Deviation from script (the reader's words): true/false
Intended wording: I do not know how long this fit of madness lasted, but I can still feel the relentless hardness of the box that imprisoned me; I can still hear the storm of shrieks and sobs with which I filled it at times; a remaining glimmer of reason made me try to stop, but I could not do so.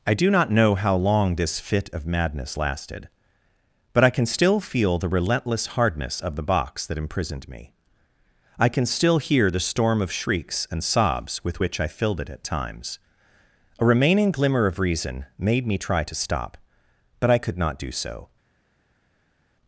false